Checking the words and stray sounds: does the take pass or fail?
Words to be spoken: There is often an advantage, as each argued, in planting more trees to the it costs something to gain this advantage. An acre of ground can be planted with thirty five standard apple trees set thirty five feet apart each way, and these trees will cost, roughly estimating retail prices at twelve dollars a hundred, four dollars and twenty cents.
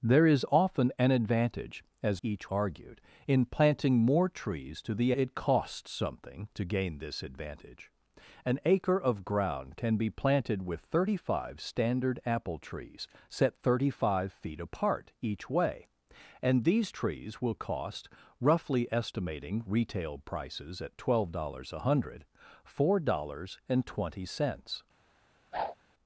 fail